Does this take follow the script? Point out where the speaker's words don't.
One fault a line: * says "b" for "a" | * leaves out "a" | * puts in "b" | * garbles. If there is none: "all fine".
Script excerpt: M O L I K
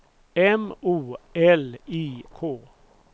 all fine